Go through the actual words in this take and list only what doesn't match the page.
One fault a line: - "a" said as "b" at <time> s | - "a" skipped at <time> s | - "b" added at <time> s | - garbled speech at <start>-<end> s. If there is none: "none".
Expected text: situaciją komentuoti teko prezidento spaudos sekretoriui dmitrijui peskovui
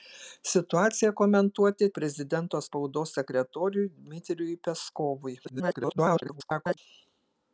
- "teko" skipped at 1.9 s
- garbled speech at 5.4-6.8 s